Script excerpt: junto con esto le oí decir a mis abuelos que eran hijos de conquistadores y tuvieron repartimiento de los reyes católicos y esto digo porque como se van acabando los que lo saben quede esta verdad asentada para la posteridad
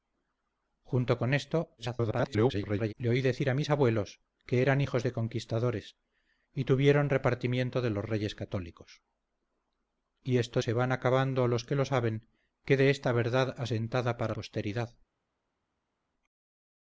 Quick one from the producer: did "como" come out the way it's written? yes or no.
no